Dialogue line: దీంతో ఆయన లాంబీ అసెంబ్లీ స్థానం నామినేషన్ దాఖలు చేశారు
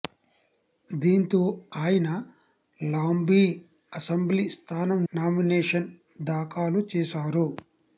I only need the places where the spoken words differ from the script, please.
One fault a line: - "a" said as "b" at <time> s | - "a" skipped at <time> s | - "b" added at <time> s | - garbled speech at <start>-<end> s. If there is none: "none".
none